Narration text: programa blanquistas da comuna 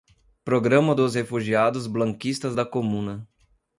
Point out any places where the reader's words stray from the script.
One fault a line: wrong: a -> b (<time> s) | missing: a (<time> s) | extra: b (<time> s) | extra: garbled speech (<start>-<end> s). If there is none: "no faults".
extra: dos refugiados (0.9 s)